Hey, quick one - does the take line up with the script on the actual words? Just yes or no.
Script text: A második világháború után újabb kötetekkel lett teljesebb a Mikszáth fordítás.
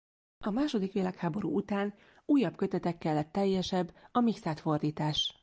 yes